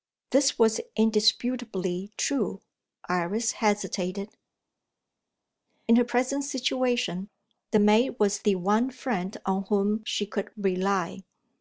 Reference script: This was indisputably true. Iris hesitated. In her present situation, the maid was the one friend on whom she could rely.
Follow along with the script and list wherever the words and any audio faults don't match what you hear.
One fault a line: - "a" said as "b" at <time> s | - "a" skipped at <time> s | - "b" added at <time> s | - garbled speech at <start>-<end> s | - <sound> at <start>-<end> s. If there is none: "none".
none